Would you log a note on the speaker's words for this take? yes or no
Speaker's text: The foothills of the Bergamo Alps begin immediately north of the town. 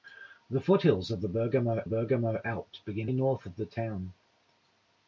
yes